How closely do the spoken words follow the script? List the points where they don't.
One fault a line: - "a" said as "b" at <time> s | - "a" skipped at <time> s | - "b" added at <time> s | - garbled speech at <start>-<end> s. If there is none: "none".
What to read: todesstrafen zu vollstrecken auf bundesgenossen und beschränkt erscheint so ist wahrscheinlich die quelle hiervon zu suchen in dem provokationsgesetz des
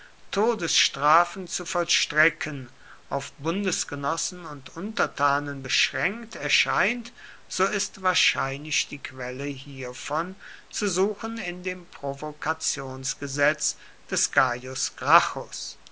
- "untertanen" added at 4.7 s